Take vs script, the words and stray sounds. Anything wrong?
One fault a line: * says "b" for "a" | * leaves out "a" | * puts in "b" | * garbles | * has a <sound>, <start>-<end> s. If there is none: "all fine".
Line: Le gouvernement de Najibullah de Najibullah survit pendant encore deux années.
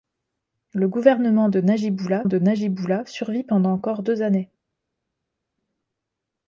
all fine